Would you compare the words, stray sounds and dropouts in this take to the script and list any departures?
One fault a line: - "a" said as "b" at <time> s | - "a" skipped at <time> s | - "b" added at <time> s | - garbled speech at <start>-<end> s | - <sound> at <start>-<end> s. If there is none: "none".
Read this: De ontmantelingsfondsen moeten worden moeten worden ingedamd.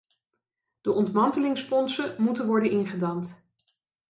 - "moeten worden" skipped at 2.7 s